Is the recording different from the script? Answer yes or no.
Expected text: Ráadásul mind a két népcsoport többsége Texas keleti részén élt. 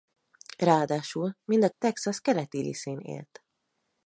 yes